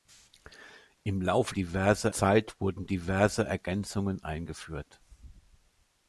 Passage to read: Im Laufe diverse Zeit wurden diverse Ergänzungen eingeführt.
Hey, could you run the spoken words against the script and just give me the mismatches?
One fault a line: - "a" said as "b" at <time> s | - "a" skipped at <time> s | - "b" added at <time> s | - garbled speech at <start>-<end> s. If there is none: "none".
none